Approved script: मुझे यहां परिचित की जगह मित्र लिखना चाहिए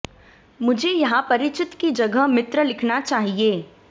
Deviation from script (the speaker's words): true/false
false